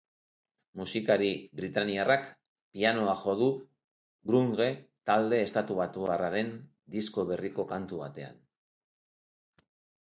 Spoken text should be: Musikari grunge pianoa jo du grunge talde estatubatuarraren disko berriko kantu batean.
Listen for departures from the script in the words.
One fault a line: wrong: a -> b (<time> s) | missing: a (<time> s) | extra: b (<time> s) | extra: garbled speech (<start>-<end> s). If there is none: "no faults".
wrong: grunge -> britainiarrak (1.6 s)